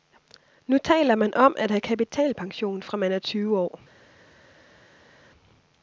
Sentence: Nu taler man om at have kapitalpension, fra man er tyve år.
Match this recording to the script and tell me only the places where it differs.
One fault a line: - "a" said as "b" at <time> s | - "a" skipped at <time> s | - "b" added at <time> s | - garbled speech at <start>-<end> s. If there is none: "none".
none